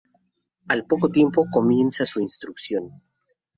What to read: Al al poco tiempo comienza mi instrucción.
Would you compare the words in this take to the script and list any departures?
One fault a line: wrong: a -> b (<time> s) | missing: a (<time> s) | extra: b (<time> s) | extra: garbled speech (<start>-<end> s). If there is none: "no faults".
missing: al (0.9 s)
wrong: mi -> su (2.1 s)